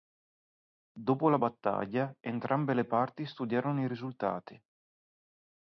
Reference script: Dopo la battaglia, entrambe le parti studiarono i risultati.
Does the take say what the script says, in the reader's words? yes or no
yes